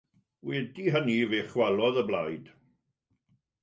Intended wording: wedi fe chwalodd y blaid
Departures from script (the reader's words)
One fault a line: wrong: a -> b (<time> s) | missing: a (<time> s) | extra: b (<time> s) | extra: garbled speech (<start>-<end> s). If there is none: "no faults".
extra: hynny (0.9 s)